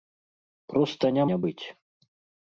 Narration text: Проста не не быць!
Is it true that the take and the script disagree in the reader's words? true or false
false